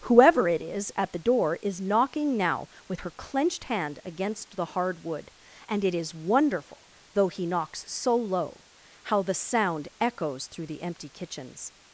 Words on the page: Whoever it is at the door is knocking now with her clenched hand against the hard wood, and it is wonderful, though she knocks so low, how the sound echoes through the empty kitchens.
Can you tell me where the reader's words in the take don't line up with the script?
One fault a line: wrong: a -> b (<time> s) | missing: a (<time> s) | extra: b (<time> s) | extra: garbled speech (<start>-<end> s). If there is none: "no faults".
wrong: she -> he (7.3 s)